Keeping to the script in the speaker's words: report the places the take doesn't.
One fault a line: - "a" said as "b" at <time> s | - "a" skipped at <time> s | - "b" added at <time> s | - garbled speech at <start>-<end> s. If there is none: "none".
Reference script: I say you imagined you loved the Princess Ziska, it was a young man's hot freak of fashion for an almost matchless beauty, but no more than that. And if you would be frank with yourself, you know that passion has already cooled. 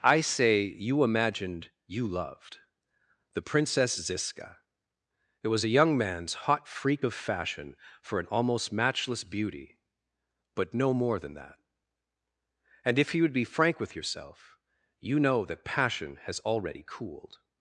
none